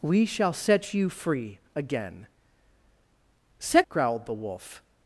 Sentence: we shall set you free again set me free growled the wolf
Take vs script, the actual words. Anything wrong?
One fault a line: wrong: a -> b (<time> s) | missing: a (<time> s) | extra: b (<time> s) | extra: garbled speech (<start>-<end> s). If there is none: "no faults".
missing: me free (3.9 s)